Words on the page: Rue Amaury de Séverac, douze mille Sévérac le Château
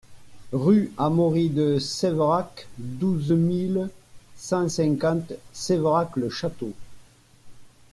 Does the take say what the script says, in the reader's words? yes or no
no